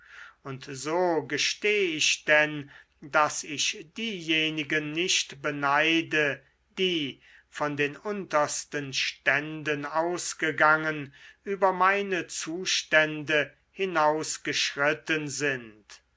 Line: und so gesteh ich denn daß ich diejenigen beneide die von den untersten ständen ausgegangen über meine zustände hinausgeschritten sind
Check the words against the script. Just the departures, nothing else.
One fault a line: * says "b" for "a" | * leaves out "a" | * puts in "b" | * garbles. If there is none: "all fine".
* puts in "nicht"